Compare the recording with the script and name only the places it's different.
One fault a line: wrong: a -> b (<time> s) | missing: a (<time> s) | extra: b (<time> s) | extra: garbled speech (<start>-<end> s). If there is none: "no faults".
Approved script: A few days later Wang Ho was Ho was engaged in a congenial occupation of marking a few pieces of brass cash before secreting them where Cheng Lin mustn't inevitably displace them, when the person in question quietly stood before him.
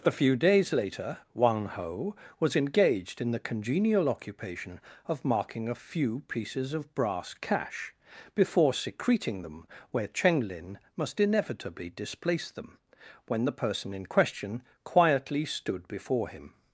missing: Ho was (2.5 s)
wrong: a -> the (3.3 s)
wrong: mustn't -> must (11.0 s)